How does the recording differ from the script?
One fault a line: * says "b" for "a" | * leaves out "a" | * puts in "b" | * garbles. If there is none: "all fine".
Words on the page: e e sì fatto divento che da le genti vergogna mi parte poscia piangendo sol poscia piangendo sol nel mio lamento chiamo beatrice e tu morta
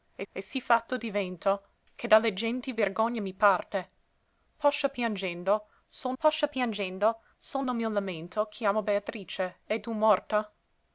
all fine